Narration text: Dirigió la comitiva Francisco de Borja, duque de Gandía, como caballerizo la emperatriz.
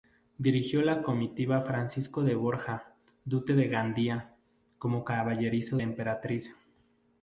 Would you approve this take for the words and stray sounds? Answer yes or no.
yes